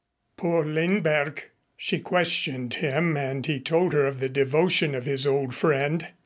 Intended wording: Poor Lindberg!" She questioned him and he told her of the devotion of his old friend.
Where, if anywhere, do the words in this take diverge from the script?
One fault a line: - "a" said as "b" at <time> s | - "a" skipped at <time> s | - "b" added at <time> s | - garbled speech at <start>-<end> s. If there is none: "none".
none